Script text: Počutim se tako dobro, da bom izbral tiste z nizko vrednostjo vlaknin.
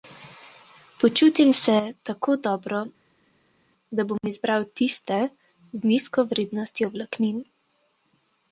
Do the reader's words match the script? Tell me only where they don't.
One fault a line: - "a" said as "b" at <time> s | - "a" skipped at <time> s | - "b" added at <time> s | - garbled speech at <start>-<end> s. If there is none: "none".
none